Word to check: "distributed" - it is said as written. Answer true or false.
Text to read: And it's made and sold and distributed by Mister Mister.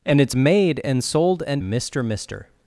false